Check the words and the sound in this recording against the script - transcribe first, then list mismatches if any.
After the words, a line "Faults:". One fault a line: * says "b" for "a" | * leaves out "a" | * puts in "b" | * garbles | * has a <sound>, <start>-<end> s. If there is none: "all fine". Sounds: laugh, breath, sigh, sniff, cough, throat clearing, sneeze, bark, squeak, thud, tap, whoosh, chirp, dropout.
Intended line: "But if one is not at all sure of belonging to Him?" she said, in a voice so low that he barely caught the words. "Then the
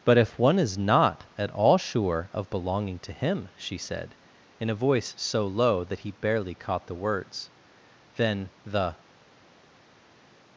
"But if one is not at all sure of belonging to Him?" she said, in a voice so low that he barely caught the words. "Then the
Faults:
all fine